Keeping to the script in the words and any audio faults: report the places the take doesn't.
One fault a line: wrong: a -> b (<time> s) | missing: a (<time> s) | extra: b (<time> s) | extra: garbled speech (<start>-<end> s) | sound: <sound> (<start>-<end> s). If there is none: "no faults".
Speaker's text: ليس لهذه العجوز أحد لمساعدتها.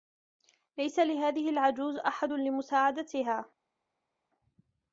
no faults